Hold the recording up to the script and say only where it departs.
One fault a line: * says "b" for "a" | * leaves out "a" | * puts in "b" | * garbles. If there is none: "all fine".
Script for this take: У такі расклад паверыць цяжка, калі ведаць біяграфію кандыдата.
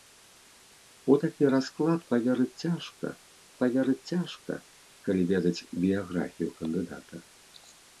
* puts in "паверыць цяжка"